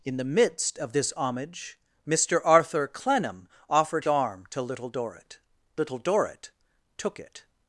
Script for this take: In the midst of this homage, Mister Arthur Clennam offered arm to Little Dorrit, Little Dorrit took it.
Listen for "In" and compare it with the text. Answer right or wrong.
right